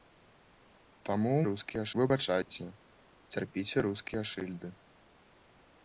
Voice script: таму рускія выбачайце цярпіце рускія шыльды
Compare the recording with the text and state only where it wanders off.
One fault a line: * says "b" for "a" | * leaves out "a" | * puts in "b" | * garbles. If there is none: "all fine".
all fine